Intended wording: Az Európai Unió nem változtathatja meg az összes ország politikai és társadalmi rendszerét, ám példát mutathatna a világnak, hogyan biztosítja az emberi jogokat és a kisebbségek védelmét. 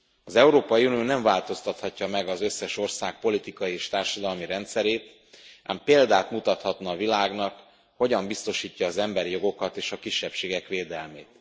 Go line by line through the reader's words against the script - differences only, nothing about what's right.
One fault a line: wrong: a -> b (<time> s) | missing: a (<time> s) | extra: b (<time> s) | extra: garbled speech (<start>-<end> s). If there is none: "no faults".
no faults